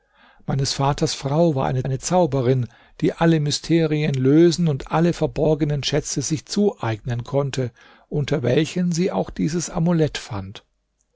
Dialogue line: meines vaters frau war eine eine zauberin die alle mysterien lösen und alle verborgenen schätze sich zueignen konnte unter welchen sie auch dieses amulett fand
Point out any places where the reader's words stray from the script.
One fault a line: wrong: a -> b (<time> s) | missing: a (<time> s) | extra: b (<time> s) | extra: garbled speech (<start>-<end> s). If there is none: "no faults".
no faults